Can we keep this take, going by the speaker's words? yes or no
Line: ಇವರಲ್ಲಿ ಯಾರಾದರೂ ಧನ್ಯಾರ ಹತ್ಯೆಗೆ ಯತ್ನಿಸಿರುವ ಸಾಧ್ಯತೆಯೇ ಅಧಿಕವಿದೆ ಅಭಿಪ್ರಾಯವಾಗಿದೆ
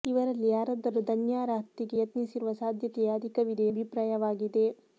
yes